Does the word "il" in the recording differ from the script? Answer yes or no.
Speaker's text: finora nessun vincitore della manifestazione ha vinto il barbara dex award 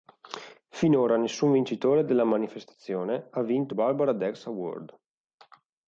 yes